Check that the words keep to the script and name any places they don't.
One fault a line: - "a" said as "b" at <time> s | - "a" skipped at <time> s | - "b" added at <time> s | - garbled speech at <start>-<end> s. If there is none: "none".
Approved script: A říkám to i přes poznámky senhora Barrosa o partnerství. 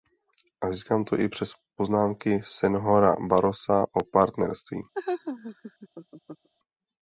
none